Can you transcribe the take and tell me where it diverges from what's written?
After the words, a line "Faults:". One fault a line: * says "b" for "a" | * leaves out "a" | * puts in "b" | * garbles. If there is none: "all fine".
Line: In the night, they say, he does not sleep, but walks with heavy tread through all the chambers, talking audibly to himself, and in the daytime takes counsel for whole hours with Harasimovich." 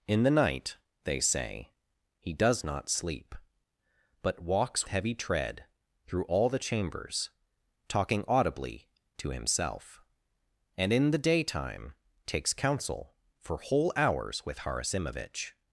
In the night, they say, he does not sleep, but walks heavy tread through all the chambers, talking audibly to himself, and in the daytime takes counsel for whole hours with Harasimovich."
Faults:
* leaves out "with"